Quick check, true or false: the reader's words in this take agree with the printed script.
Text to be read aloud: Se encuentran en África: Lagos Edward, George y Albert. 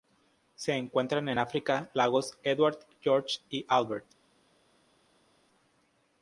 true